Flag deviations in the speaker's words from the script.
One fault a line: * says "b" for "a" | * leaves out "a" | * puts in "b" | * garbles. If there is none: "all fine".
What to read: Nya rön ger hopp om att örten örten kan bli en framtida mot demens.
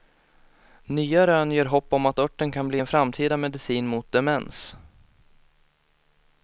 * leaves out "örten"
* puts in "medicin"